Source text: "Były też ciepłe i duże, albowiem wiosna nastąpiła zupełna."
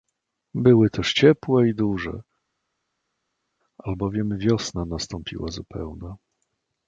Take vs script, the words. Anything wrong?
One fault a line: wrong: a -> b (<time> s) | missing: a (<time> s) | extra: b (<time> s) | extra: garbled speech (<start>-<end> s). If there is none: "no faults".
no faults